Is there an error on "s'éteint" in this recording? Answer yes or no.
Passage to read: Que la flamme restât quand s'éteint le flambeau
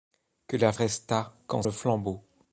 yes